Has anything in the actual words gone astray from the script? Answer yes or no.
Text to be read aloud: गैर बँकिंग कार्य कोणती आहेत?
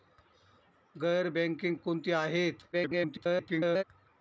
yes